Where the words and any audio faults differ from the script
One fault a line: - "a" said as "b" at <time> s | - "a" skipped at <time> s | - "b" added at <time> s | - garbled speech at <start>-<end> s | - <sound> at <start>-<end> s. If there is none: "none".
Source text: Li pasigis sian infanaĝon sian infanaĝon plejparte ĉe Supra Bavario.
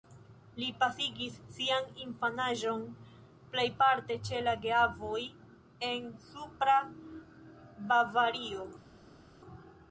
- "sian infanaĝon plejparte ĉe" said as "plejparte ĉe la geavoj en" at 3.5 s